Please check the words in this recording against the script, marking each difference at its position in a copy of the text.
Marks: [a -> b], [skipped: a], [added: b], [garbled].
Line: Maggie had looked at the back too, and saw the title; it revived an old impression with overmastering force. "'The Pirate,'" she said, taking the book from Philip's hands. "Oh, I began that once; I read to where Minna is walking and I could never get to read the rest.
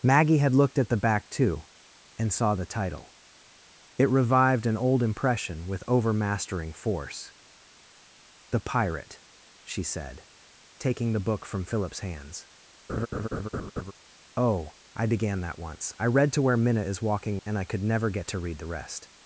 Maggie had looked at the back too, and saw the title; it revived an old impression with overmastering force. "'The Pirate,'" she said, taking the book from Philip's hands. "Oh, I began that once; I read to where Minna is walking and I could never get to read the rest.